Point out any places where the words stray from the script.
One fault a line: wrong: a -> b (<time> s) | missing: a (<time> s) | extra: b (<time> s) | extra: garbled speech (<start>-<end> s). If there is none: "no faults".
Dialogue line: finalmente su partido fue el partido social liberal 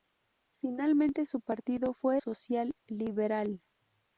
missing: el partido (2.2 s)